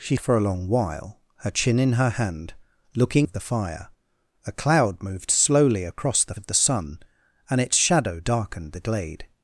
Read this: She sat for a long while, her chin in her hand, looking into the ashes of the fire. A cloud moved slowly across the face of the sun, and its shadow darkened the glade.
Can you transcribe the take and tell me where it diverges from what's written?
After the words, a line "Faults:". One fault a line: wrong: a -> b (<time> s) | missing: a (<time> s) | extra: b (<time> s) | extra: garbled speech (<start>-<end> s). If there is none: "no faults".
She for a long while, her chin in her hand, looking of the fire. A cloud moved slowly across the of the sun, and its shadow darkened the glade.
Faults:
missing: sat (0.2 s)
missing: into the ashes (3.3 s)
missing: face (6.3 s)